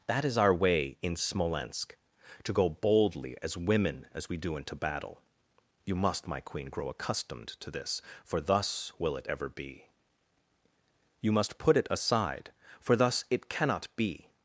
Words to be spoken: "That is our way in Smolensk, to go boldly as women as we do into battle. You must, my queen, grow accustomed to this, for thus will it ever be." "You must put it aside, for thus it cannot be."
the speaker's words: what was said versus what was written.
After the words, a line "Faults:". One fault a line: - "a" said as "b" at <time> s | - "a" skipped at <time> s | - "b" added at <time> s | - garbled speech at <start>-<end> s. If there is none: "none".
"That is our way in Smolensk, to go boldly as women as we do into battle. You must, my queen, grow accustomed to this, for thus will it ever be." "You must put it aside, for thus it cannot be."
Faults:
none